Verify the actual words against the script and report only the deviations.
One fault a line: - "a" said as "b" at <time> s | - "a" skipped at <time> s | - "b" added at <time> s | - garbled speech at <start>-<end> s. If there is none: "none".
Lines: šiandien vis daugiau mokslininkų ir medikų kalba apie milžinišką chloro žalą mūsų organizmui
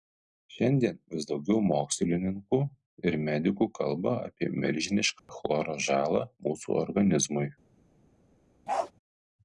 none